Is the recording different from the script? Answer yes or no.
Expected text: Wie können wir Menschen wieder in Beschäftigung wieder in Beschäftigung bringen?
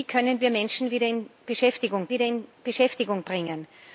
no